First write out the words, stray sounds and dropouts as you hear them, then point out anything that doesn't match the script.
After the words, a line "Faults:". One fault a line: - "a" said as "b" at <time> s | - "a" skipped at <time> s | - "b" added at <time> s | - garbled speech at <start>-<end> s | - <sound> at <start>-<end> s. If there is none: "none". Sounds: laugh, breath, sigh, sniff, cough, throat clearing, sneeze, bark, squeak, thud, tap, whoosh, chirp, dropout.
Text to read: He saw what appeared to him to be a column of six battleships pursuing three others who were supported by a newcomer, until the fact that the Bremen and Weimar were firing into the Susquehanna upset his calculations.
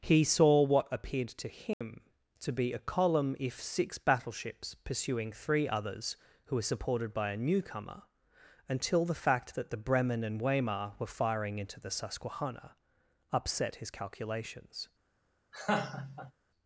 He saw what appeared to him to be a column if six battleships pursuing three others who were supported by a newcomer, until the fact that the Bremen and Weimar were firing into the Susquehanna upset his calculations.
Faults:
- dropout at 1.7-1.8 s
- "of" said as "if" at 3.4 s
- laugh at 15.5-16.3 s